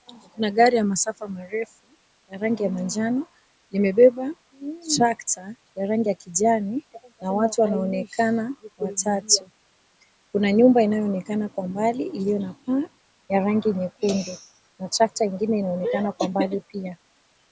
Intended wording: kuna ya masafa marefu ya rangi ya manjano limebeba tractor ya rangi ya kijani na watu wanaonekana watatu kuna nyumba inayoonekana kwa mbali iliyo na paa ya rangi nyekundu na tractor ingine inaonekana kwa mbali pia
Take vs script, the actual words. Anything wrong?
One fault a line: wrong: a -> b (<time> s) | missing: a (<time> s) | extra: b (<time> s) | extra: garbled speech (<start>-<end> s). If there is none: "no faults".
extra: gari (0.5 s)